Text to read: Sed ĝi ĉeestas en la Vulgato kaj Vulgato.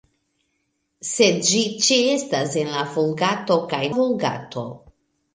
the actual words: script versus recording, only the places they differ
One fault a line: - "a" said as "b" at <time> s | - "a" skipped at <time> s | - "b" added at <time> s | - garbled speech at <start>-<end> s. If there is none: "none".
none